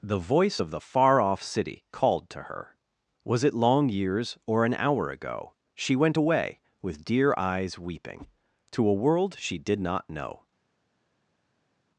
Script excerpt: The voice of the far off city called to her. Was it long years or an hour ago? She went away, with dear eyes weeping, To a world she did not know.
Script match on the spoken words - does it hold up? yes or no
yes